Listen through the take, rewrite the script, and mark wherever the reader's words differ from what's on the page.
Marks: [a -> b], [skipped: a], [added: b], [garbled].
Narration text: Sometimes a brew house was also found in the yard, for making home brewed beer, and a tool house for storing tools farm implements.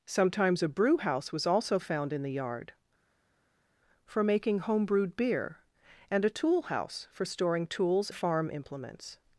Sometimes a brew house was also found in the yard, for making home brewed beer, and a tool house for storing tools farm implements.